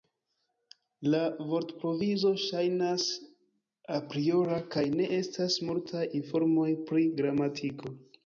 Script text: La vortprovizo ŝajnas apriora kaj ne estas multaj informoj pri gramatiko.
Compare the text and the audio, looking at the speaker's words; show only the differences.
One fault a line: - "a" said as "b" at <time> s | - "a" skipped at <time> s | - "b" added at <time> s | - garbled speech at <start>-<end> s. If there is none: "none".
none